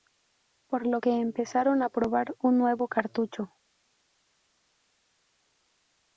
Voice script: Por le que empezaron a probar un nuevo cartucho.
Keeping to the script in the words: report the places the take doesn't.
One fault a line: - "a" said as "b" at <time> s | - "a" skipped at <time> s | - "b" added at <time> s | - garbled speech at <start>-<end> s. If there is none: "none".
- "le" said as "lo" at 0.9 s